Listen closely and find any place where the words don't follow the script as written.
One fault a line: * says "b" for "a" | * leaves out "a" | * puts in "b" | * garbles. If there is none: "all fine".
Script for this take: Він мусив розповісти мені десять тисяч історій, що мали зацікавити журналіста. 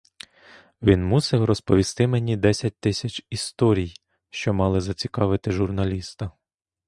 all fine